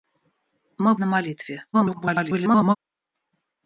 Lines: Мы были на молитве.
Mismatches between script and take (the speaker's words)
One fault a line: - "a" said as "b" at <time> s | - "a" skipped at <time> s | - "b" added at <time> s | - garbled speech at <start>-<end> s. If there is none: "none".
- "были" skipped at 0.9 s
- garbled speech at 1.7-2.8 s